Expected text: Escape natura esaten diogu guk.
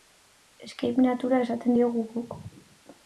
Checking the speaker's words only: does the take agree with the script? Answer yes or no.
yes